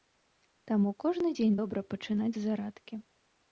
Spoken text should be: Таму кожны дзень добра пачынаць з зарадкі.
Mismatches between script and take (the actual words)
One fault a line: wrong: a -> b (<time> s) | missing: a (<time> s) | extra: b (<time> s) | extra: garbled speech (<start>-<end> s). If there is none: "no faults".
no faults